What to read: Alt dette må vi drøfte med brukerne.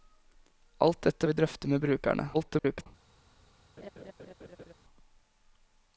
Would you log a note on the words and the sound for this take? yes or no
yes